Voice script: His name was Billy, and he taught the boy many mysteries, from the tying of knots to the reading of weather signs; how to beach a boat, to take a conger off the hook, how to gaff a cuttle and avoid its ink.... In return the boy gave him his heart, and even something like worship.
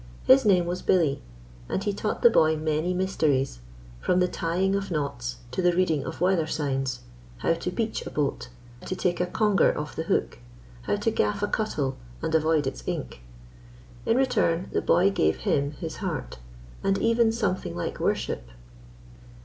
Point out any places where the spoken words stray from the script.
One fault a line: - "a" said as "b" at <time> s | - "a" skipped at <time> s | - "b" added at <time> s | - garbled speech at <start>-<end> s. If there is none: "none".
none